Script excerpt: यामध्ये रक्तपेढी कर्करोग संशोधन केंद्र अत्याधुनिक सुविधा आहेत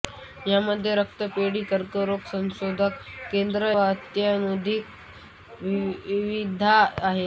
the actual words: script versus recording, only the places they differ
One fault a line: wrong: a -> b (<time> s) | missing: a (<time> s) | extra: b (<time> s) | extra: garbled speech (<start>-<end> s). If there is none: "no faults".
no faults